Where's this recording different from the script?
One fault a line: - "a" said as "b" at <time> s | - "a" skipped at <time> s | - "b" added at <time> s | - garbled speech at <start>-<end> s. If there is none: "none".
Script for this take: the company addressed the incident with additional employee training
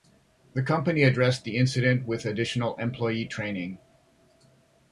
none